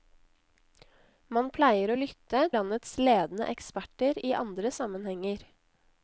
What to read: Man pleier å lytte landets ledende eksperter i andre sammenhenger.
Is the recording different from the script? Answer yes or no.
no